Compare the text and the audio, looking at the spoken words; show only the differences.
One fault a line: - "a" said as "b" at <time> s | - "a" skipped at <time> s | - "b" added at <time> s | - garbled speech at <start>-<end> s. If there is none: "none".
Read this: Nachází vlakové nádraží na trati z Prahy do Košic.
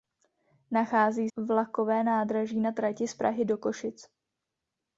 none